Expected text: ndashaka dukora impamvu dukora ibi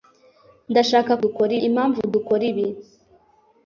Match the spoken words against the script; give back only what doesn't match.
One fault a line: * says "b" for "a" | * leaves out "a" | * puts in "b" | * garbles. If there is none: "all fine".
all fine